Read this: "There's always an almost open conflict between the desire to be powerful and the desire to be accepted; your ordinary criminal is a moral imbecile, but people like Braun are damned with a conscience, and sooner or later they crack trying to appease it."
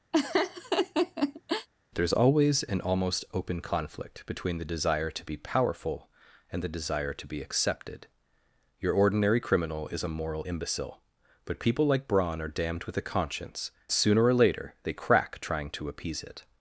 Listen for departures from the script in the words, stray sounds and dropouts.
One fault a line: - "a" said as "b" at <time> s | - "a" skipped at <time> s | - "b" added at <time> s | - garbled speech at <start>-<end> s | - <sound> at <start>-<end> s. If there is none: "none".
- laugh at 0.1-1.7 s
- "and" skipped at 13.7 s